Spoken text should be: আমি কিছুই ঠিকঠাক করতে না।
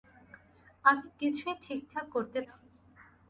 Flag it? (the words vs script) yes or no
no